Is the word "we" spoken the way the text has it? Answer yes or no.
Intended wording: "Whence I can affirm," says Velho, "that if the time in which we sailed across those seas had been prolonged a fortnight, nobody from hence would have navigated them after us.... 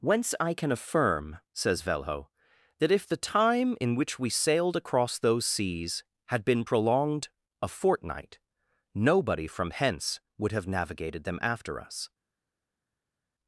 yes